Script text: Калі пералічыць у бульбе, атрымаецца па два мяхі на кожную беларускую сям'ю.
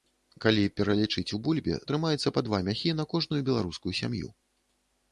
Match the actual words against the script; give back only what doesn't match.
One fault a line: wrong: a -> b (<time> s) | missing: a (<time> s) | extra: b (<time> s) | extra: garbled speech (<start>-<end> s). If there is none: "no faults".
no faults